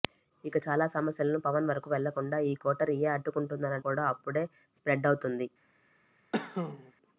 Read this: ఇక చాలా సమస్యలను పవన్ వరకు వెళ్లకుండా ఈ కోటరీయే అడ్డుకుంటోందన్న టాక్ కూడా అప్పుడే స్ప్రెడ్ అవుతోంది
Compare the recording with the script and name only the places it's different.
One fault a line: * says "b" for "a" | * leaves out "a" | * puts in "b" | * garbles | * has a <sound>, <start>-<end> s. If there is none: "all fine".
* leaves out "టాక్"
* has a cough, 6.3-6.9 s